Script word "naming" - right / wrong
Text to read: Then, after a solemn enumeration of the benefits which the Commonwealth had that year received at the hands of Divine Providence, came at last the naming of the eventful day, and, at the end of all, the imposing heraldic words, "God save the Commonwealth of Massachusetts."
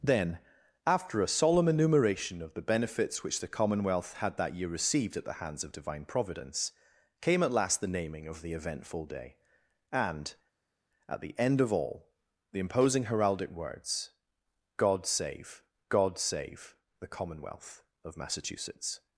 right